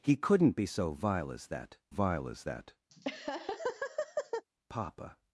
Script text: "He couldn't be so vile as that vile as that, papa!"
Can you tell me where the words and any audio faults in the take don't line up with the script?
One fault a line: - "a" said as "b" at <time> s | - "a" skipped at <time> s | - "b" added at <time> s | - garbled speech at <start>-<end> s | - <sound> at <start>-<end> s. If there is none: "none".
- laugh at 2.9-4.4 s